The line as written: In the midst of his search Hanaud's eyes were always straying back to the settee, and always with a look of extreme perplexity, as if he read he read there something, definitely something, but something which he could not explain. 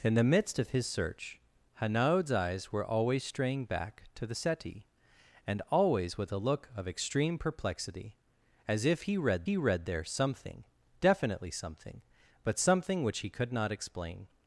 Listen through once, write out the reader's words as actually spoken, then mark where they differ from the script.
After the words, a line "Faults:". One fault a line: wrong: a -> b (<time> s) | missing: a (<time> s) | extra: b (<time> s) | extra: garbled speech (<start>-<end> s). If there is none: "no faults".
In the midst of his search Hanaud's eyes were always straying back to the settee, and always with a look of extreme perplexity, as if he read he read there something, definitely something, but something which he could not explain.
Faults:
no faults